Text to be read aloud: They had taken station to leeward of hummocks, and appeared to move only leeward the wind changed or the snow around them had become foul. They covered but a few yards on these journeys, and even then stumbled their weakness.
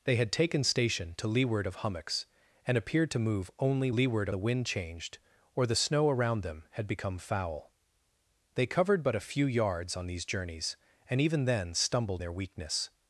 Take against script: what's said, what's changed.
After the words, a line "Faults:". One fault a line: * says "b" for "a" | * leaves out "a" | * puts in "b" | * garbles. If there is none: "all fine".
They had taken station to leeward of hummocks, and appeared to move only leeward the wind changed or the snow around them had become foul. They covered but a few yards on these journeys, and even then stumbled their weakness.
Faults:
all fine